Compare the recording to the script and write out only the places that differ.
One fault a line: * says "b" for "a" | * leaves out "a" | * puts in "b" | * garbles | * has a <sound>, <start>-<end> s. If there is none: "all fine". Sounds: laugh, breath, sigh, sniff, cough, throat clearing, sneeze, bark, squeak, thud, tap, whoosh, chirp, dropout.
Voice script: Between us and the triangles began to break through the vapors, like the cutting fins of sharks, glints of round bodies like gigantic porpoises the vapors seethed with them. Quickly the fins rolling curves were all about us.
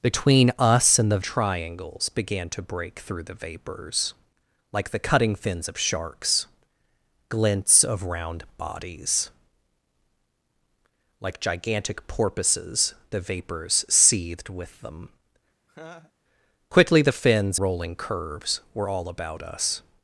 * has a laugh, 15.7-16.1 s